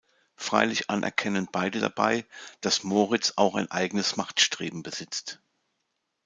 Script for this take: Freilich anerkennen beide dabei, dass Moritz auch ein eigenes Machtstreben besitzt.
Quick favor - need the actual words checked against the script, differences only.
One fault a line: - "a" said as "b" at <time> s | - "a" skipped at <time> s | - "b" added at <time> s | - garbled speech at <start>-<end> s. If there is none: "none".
none